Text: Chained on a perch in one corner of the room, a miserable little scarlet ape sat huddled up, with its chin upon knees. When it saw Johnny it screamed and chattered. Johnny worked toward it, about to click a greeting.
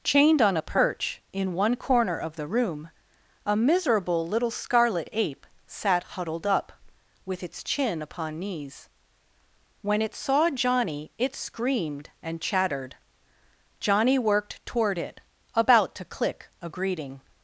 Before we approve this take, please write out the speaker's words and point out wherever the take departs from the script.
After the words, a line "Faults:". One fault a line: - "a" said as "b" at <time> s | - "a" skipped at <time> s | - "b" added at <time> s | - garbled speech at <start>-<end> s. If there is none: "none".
Chained on a perch in one corner of the room, a miserable little scarlet ape sat huddled up, with its chin upon knees. When it saw Johnny it screamed and chattered. Johnny worked toward it, about to click a greeting.
Faults:
none